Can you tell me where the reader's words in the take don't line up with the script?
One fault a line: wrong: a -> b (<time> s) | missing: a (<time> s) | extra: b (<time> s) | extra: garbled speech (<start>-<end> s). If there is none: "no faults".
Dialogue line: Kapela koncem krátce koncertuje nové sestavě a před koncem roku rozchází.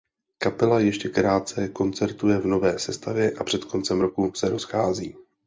wrong: koncem -> ještě (0.8 s)
extra: v (2.4 s)
extra: se (4.3 s)